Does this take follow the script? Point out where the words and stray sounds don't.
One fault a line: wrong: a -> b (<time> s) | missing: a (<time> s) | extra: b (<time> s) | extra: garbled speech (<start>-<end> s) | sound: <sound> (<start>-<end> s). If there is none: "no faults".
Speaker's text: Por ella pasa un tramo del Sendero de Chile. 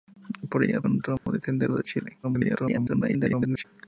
missing: pasa (0.8 s)
sound: dropout (1.2-1.3 s)
extra: garbled speech (2.2-3.6 s)